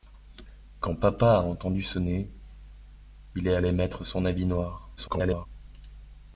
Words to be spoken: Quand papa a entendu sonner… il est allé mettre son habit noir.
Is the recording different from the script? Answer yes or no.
yes